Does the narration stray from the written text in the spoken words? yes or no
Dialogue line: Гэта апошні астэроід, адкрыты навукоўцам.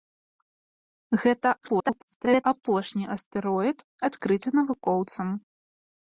yes